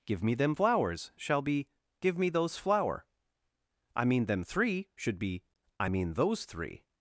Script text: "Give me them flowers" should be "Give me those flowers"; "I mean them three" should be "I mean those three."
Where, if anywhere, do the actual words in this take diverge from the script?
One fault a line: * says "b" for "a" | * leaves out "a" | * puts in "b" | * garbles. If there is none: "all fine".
* says "shall" for "should"
* says "flower" for "flowers"